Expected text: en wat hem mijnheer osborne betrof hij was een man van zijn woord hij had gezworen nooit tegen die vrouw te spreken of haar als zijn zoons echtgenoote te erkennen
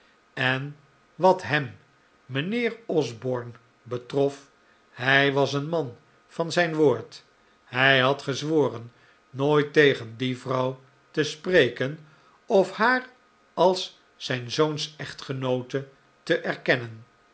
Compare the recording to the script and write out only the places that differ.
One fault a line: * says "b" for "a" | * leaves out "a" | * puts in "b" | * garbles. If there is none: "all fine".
all fine